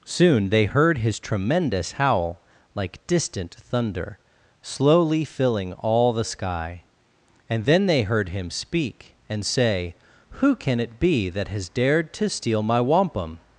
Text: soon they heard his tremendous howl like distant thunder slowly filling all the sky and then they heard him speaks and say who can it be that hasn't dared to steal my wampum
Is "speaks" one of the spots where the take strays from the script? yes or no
yes